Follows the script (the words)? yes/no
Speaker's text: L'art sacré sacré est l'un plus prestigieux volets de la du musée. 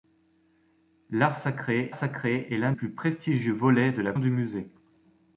yes